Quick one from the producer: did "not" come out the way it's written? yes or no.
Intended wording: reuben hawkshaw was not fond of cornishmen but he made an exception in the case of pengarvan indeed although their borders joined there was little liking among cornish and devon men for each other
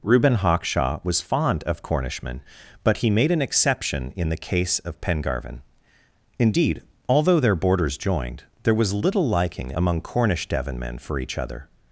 no